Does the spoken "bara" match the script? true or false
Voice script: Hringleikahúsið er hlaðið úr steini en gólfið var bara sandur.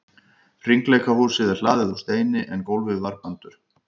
false